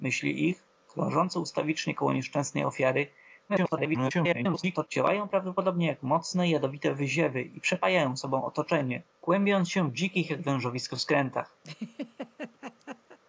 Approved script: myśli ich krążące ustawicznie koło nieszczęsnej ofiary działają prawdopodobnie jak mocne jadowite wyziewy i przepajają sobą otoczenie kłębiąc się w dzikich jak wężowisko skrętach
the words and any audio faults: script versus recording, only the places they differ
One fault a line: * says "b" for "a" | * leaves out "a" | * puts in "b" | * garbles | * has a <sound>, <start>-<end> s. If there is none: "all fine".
* garbles
* has a laugh, 11.6-13.2 s